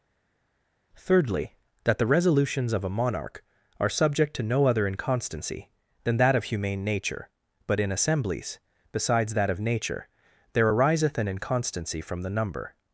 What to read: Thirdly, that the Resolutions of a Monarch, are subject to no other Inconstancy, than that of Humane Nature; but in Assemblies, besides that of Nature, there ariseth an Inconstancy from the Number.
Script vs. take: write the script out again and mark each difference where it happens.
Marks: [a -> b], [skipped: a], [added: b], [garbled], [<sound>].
Thirdly, that the Resolutions of a Monarch, are subject to no other Inconstancy, than that of Humane Nature; but in Assemblies, besides that of Nature, there ariseth an Inconstancy from the Number.